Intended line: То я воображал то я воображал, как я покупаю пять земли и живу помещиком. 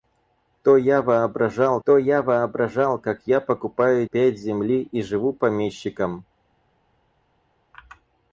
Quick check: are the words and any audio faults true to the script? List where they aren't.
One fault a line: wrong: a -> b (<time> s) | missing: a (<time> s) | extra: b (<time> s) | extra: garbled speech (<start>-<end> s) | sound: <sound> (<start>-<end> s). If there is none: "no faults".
no faults